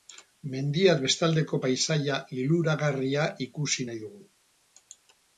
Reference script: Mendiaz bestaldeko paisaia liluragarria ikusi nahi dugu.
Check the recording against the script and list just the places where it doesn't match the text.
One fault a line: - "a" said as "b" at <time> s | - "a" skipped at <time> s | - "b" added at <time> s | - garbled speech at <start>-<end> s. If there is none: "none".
none